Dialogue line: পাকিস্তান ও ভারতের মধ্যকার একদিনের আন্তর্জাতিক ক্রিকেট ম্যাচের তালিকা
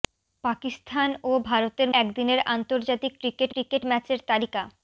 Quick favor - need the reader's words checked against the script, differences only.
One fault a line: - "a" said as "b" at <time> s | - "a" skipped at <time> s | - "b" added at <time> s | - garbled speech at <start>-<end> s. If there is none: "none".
- "মধ্যকার" skipped at 1.9 s
- "ক্রিকেট" added at 3.5 s